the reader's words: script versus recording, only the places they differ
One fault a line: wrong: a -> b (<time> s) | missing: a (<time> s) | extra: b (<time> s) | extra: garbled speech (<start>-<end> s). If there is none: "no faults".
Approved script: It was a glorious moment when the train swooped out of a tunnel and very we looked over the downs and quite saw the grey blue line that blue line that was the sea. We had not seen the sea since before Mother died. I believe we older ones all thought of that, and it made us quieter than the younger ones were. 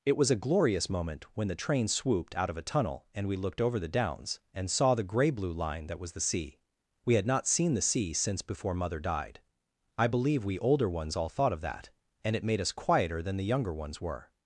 missing: very (3.3 s)
missing: quite (4.7 s)
missing: blue line that (6.0 s)